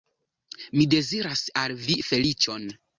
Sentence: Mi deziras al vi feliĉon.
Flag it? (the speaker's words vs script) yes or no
no